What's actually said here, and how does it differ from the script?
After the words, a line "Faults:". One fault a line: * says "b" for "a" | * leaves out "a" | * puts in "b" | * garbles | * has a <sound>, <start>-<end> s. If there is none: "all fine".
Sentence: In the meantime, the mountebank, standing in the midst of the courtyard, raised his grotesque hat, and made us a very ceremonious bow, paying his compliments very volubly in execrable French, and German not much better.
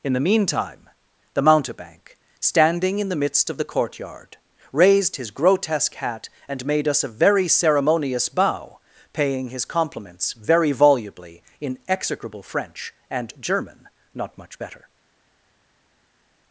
In the meantime, the mountebank, standing in the midst of the courtyard, raised his grotesque hat, and made us a very ceremonious bow, paying his compliments very volubly in execrable French, and German not much better.
Faults:
all fine